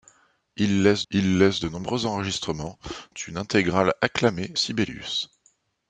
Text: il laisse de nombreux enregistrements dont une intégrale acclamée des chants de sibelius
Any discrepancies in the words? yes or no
yes